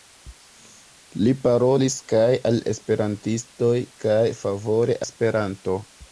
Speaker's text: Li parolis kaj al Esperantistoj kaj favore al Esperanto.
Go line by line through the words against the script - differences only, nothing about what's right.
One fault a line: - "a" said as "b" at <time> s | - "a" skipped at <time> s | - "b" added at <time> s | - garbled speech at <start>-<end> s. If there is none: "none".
- "al" skipped at 5.0 s